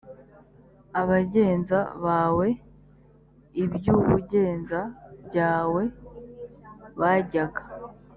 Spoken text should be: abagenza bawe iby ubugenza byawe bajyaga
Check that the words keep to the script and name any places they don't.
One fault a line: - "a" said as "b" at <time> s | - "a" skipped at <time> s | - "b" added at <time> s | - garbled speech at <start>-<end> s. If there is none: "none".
none